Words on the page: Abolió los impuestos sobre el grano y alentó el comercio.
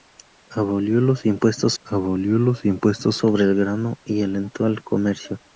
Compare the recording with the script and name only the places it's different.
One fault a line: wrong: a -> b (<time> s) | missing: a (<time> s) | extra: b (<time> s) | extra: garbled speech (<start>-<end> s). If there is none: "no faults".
extra: abolió los impuestos (1.8 s)